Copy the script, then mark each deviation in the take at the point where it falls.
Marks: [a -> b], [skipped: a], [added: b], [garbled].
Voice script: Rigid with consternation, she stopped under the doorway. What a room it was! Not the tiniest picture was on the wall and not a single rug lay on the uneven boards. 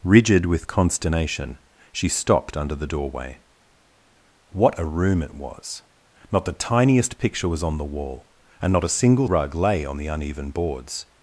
Rigid with consternation, she stopped under the doorway. What a room it was! Not the tiniest picture was on the wall and not a single rug lay on the uneven boards.